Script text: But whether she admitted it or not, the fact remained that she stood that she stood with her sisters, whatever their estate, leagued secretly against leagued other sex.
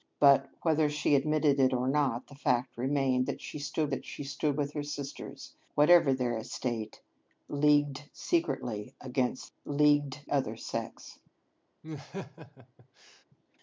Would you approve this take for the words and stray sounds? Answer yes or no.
no